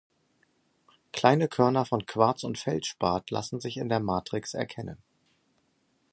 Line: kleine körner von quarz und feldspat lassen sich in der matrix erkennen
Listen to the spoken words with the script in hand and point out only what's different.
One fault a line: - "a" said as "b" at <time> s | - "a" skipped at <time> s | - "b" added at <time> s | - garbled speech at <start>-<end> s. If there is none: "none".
none